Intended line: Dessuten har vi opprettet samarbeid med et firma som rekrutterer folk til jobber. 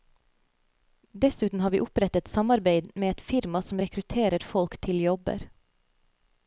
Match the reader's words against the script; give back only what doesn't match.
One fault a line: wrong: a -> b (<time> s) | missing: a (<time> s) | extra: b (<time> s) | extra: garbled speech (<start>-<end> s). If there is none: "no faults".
no faults